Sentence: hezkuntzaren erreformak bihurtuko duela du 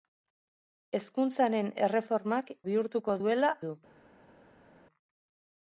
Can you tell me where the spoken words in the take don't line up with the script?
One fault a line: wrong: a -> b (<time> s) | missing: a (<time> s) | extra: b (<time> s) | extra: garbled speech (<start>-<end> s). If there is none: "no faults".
no faults